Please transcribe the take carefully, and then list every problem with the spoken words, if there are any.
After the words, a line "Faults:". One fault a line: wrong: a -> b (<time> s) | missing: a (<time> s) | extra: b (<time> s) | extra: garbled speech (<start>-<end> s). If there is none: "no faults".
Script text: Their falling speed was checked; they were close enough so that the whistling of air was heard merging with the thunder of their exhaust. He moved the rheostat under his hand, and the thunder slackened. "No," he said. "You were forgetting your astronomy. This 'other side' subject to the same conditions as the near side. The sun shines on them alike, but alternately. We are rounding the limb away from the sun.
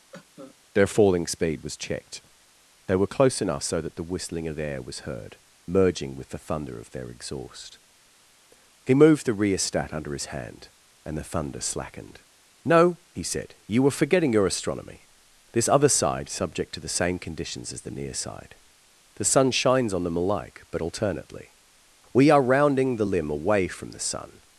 Their falling speed was checked; they were close enough so that the whistling of air was heard merging with the thunder of their exhaust. He moved the rheostat under his hand, and the thunder slackened. "No," he said. "You were forgetting your astronomy. This 'other side' subject to the same conditions as the near side. The sun shines on them alike, but alternately. We are rounding the limb away from the sun.
Faults:
no faults